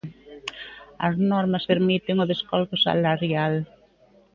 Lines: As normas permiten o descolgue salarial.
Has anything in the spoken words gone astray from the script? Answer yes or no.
no